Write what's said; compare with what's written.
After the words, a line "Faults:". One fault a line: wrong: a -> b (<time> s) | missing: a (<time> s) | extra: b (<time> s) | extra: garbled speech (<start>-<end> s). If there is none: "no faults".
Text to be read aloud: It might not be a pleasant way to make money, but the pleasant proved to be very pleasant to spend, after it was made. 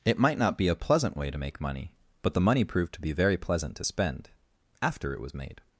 It might not be a pleasant way to make money, but the money proved to be very pleasant to spend, after it was made.
Faults:
wrong: pleasant -> money (2.4 s)